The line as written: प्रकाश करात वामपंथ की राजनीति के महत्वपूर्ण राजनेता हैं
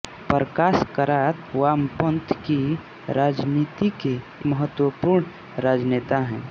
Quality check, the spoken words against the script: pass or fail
pass